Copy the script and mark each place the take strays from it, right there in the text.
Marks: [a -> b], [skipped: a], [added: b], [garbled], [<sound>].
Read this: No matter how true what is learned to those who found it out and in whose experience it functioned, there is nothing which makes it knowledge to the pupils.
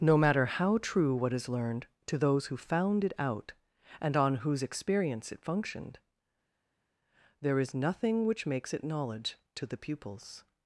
No matter how true what is learned to those who found it out and [in -> on] whose experience it functioned, there is nothing which makes it knowledge to the pupils.